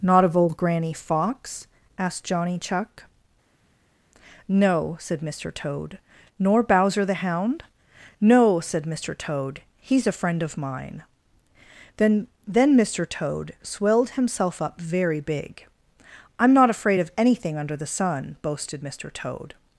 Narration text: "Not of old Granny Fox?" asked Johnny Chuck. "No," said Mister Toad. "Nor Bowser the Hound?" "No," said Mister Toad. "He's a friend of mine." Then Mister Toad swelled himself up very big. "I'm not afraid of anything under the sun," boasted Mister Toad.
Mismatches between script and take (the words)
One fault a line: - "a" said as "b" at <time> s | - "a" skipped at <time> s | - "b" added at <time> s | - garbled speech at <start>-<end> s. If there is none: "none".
- "Then" added at 12.5 s